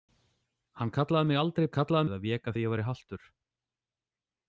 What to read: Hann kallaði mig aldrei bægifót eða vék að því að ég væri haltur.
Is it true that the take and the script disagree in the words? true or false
true